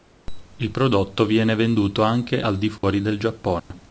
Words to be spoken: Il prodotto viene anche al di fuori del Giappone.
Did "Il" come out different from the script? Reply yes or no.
no